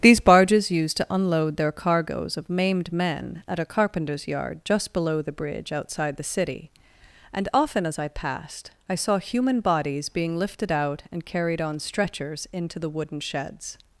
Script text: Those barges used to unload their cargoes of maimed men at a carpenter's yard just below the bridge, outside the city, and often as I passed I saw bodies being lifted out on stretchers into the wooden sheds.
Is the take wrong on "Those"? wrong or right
wrong